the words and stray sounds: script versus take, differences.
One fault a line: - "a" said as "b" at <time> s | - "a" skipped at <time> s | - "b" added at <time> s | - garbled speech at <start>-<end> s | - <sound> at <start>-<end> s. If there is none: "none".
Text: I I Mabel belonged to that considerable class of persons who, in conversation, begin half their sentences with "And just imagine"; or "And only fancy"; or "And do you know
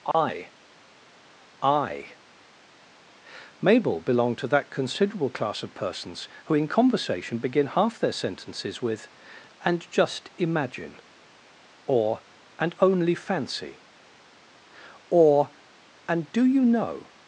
- dropout at 0.1-0.1 s